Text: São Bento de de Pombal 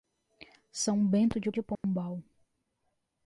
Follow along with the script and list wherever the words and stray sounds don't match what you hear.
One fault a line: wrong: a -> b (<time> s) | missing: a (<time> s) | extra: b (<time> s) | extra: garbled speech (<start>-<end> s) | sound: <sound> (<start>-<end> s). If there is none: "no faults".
sound: dropout (1.8-1.8 s)